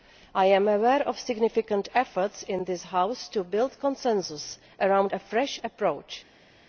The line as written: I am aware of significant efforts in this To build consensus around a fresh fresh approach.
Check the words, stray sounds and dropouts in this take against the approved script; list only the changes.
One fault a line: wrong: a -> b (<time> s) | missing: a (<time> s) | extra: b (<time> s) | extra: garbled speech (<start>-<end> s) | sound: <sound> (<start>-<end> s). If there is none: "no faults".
extra: House (2.9 s)
missing: fresh (5.6 s)